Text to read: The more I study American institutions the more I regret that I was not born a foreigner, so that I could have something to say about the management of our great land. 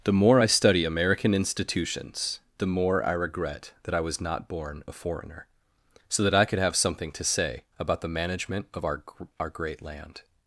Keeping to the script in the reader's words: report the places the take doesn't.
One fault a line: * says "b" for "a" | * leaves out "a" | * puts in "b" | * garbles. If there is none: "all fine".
* puts in "our"